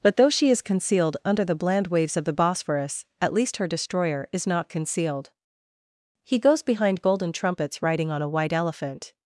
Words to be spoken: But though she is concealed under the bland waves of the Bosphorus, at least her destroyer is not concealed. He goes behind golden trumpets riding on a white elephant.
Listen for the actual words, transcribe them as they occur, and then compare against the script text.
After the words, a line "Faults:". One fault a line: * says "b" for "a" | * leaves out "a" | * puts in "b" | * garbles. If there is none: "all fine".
But though she is concealed under the bland waves of the Bosphorus, at least her destroyer is not concealed. He goes behind golden trumpets riding on a white elephant.
Faults:
all fine